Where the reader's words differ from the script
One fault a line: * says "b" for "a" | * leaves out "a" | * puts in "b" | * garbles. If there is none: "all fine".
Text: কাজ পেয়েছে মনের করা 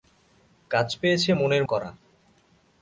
all fine